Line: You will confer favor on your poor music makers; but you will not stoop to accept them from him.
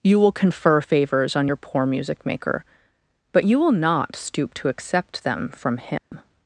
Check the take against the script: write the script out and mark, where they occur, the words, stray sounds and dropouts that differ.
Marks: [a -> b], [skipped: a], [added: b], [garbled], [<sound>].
You will confer [favor -> favors] on your poor music [makers; -> maker] but you will not stoop to accept them from him. [dropout]